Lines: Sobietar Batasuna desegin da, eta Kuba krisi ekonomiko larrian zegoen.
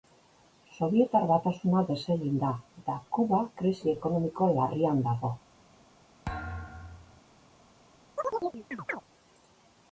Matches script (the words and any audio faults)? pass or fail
fail